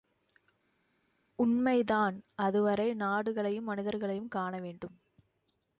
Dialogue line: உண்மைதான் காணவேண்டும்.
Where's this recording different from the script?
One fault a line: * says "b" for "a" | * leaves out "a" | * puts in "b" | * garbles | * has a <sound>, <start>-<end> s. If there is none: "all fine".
* puts in "அதுவரை நாடுகளையும் மனிதர்களையும்"